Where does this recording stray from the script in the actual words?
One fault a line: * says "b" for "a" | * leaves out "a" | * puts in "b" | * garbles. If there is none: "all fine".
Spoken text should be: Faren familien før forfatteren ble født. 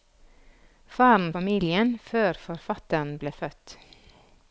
all fine